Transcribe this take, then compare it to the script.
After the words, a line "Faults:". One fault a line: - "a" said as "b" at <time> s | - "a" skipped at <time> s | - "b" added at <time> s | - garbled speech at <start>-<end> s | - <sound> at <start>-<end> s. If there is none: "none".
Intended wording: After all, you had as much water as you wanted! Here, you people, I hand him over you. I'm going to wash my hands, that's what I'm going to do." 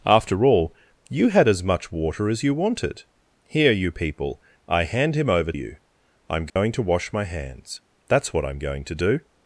After all, you had as much water as you wanted! Here, you people, I hand him over you. I'm going to wash my hands, that's what I'm going to do."
Faults:
- dropout at 6.5-6.6 s